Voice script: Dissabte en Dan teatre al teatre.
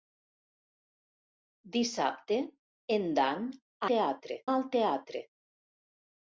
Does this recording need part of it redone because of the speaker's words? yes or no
no